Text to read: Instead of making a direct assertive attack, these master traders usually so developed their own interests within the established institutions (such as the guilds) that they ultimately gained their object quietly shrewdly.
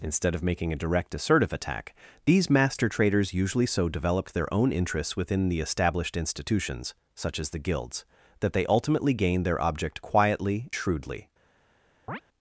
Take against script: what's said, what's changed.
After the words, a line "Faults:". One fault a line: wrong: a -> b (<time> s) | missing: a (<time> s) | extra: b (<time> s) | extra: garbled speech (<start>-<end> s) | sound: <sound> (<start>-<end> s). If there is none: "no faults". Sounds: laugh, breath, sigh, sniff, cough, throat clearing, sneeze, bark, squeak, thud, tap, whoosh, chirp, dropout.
Instead of making a direct assertive attack, these master traders usually so developed their own interests within the established institutions (such as the guilds) that they ultimately gained their object quietly shrewdly.
Faults:
sound: chirp (12.1-12.2 s)